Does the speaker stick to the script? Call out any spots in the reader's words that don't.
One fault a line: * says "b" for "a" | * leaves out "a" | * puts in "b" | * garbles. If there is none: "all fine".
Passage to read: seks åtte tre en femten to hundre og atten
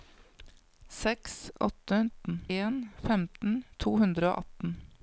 * says "atten" for "tre"